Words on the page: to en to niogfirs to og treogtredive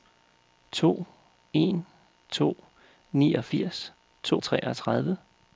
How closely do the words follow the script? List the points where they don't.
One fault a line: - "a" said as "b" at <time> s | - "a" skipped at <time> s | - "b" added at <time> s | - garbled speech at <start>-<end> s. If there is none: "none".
none